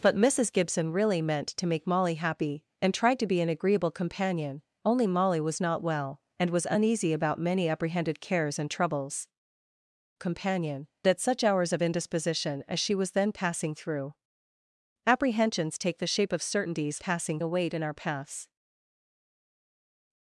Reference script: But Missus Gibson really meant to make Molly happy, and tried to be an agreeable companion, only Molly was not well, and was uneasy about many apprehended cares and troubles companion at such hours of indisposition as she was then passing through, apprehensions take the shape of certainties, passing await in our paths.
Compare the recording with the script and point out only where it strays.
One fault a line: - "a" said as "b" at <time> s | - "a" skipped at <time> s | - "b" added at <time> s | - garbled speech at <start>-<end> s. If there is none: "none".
none